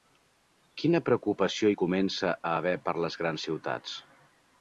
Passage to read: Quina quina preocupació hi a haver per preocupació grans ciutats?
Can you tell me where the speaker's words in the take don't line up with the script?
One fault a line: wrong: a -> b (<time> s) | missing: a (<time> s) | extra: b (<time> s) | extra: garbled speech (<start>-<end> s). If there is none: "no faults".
missing: quina (1.0 s)
extra: comença (1.8 s)
wrong: preocupació -> les (3.0 s)